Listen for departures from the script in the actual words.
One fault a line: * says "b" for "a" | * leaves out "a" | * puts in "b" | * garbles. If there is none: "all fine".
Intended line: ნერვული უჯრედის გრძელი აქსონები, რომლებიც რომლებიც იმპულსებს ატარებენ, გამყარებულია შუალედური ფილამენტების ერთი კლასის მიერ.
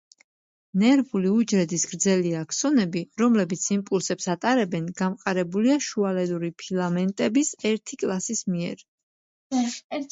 * leaves out "რომლებიც"